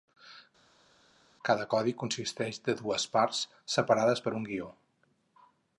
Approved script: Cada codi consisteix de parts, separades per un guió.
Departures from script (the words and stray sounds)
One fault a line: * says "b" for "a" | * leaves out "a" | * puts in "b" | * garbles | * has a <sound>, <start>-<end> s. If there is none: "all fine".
* puts in "dues"